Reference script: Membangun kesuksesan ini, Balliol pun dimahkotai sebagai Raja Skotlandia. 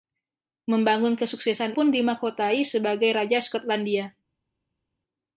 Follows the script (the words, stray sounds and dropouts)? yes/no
no